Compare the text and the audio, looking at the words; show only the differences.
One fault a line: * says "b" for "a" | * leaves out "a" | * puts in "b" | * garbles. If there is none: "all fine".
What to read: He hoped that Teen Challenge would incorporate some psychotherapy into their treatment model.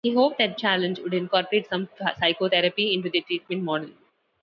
* leaves out "Teen"